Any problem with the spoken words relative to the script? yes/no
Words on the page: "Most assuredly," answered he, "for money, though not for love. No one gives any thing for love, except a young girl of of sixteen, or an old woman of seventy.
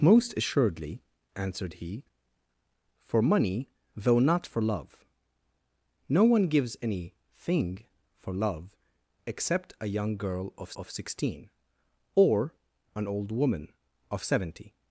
no